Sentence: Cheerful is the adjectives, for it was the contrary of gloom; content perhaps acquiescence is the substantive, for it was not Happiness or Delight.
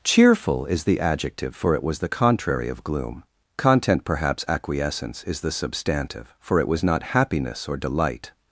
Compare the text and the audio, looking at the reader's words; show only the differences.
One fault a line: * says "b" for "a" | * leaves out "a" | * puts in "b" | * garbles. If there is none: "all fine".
* says "adjective" for "adjectives"